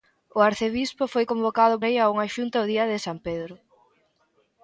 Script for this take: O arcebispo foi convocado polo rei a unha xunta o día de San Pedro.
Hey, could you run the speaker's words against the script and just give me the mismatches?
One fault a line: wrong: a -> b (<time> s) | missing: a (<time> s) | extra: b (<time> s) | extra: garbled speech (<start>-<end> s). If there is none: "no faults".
missing: polo (1.7 s)